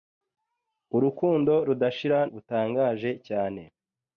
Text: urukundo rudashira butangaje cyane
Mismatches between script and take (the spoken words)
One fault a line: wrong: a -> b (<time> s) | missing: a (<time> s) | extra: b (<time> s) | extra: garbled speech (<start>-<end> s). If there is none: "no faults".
no faults